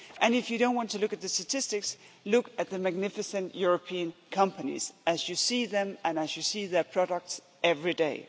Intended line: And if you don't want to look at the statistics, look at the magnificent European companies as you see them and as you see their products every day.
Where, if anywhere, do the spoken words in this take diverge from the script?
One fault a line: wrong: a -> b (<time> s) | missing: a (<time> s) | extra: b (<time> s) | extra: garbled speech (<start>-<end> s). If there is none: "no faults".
no faults